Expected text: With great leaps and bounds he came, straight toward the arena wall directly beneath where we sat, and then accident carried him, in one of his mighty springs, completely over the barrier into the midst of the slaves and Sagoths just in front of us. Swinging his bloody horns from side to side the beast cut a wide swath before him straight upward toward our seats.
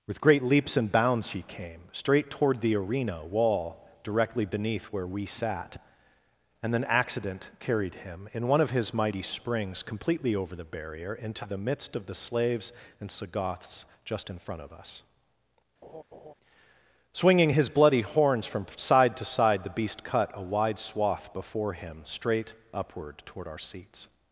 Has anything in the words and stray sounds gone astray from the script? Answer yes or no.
yes